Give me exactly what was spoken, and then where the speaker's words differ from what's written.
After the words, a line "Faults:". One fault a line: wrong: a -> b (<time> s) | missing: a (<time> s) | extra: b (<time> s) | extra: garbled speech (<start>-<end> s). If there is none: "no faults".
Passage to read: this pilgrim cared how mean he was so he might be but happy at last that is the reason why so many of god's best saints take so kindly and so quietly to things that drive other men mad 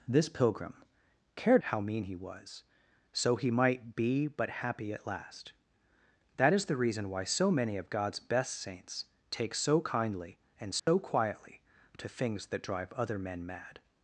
this pilgrim cared how mean he was so he might be but happy at last that is the reason why so many of god's best saints take so kindly and so quietly to things that drive other men mad
Faults:
no faults